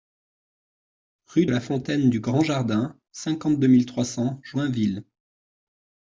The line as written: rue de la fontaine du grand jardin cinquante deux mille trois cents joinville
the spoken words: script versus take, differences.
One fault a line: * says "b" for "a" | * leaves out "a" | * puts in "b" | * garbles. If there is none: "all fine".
* leaves out "de"